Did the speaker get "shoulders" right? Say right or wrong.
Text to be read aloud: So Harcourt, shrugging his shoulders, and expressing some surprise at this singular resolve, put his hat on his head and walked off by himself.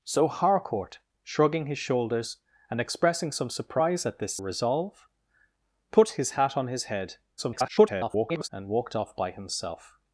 right